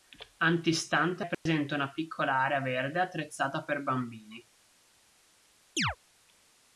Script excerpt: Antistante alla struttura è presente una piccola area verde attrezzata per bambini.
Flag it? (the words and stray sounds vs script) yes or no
yes